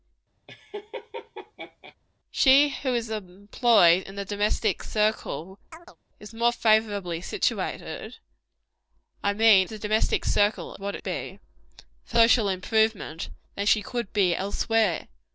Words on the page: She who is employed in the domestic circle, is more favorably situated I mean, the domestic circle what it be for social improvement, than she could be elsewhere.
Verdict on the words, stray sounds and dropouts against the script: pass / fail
fail